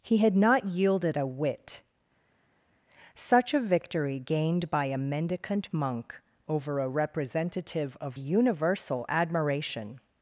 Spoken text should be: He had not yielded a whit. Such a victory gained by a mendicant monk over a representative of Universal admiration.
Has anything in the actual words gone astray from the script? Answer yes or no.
no